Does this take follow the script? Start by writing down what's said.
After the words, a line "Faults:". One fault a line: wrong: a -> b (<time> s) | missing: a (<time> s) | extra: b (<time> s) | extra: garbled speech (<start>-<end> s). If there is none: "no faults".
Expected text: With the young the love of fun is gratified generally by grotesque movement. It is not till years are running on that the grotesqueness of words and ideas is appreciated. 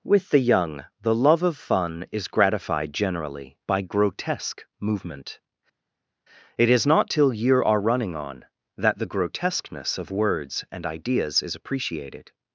With the young the love of fun is gratified generally by grotesque movement. It is not till year are running on that the grotesqueness of words and ideas is appreciated.
Faults:
wrong: years -> year (7.3 s)